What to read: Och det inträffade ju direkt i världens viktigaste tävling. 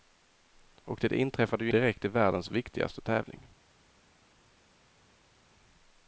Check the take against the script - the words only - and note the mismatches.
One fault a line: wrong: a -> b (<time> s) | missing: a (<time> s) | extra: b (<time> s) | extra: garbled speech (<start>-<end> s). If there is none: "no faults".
no faults